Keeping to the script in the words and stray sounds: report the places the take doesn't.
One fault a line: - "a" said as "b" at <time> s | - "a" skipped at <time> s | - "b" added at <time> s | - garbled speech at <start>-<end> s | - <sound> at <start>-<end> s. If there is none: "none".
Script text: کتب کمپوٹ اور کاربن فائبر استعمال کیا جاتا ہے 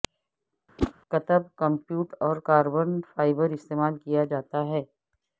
- whoosh at 0.8-0.9 s